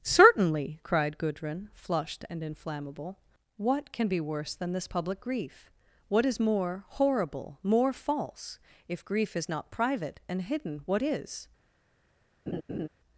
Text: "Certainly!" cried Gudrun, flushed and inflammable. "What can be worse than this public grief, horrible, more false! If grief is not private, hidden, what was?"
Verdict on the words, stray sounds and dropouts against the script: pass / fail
fail